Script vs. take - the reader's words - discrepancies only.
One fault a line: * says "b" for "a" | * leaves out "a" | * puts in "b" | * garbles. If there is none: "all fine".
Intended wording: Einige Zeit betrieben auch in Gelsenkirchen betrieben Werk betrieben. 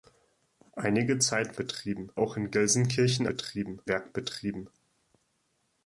all fine